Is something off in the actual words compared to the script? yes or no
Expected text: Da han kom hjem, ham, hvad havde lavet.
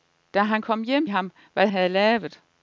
no